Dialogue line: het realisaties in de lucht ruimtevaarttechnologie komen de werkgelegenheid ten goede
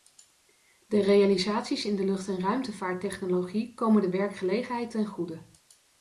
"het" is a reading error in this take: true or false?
true